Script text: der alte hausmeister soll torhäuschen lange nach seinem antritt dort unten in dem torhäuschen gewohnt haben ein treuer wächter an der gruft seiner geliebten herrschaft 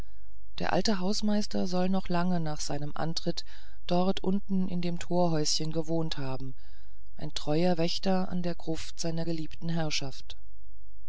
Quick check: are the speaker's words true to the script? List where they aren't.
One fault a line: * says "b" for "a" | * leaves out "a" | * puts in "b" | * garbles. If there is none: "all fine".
* says "noch" for "torhäuschen"